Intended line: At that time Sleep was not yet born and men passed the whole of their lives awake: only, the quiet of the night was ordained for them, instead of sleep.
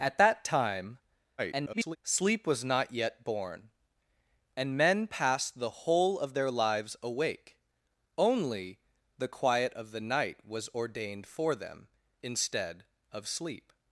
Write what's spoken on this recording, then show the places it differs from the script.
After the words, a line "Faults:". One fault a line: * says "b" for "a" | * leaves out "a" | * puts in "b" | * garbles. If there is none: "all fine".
At that time [garbled] Sleep was not yet born and men passed the whole of their lives awake: only, the quiet of the night was ordained for them, instead of sleep.
Faults:
* garbles